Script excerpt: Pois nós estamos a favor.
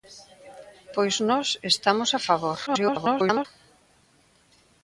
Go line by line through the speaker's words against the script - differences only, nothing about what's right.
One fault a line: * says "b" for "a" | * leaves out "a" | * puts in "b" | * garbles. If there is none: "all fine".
* garbles